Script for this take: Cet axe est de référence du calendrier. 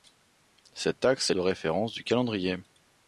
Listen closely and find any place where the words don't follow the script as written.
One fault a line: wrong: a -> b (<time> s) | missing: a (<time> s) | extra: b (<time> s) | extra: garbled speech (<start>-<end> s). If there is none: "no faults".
no faults